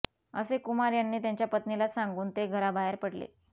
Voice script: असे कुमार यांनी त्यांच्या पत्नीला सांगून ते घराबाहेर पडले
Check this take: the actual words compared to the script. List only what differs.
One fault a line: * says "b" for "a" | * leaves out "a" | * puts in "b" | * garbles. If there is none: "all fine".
all fine